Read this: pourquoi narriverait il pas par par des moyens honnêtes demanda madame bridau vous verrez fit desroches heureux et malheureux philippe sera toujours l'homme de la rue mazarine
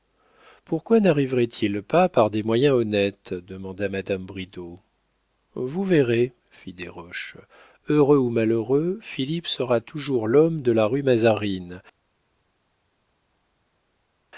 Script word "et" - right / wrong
wrong